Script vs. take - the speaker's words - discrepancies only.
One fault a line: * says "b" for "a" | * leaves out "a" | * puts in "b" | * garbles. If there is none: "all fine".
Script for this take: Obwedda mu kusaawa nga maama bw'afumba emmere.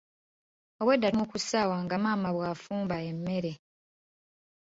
all fine